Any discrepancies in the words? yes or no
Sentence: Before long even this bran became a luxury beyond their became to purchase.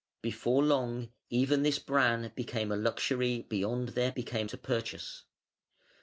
no